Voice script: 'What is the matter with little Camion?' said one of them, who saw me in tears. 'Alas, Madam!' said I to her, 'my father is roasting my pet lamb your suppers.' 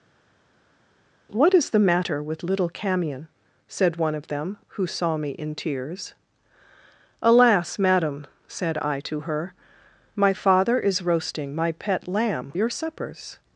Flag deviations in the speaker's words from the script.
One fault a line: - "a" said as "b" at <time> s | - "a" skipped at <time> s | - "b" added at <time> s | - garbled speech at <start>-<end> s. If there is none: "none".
none